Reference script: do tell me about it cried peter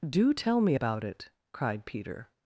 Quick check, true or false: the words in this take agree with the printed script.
true